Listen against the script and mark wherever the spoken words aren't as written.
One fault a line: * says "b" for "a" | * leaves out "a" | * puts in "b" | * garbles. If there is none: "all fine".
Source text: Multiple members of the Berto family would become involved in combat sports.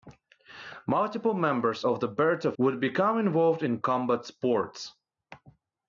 * leaves out "family"